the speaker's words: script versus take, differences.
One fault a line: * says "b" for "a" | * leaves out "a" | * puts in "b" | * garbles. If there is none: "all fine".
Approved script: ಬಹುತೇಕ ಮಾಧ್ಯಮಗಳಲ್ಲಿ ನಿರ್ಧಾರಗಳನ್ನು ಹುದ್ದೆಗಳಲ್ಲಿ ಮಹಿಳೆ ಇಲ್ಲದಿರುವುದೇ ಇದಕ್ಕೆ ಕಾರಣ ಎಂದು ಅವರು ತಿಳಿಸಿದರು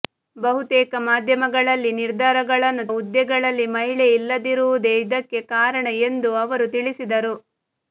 all fine